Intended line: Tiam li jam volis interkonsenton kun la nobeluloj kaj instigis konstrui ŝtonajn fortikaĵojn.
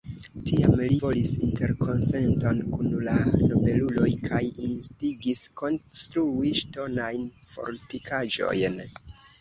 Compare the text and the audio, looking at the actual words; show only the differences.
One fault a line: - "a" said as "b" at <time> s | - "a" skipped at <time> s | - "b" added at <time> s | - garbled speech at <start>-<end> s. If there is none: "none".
- "jam" skipped at 0.9 s